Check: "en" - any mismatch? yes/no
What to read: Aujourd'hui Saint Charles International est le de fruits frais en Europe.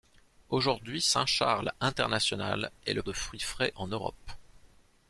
no